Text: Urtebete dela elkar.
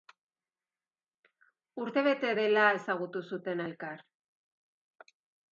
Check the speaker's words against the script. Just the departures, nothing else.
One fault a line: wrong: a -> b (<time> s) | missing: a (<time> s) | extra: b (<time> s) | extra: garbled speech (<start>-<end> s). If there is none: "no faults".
extra: ezagutu zuten (2.8 s)